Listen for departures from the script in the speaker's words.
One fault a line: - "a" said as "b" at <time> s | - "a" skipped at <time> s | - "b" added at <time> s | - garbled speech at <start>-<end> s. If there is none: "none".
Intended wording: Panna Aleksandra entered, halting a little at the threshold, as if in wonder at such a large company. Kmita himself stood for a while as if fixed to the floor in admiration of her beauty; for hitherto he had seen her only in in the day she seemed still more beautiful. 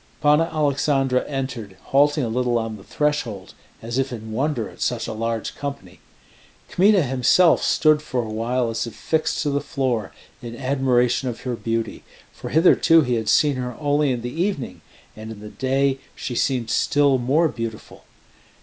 - "at" said as "on" at 2.6 s
- "the evening and" added at 14.2 s